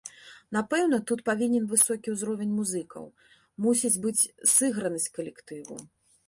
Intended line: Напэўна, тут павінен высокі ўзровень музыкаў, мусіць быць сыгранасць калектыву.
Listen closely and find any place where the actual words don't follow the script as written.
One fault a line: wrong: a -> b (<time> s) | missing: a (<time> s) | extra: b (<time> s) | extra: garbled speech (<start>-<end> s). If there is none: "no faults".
no faults